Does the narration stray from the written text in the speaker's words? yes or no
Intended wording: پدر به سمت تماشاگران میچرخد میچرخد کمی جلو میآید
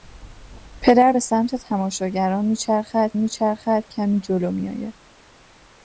no